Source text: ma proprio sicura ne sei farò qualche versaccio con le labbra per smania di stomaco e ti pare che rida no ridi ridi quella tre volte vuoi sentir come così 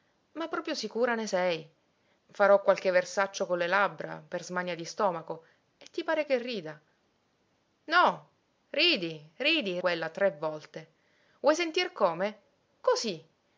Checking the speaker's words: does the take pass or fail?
pass